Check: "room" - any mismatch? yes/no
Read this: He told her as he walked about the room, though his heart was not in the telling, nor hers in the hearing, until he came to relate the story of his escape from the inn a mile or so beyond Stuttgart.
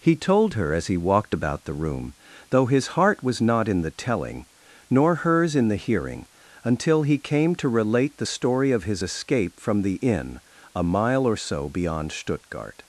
no